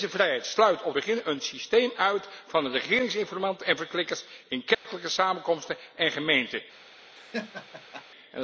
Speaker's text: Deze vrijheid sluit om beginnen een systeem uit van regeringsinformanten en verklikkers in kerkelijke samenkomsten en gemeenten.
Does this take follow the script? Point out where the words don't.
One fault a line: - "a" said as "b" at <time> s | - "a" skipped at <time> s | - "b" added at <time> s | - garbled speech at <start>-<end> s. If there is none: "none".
none